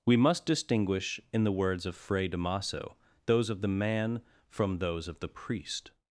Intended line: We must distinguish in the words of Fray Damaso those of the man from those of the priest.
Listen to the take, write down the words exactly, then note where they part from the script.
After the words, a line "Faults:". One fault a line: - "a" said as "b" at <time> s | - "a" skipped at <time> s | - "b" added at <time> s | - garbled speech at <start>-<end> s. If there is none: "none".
We must distinguish in the words of Fray Damaso those of the man from those of the priest.
Faults:
none